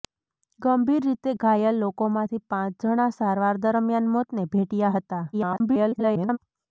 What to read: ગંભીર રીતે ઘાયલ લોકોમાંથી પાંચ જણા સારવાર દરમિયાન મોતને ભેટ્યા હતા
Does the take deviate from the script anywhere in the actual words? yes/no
yes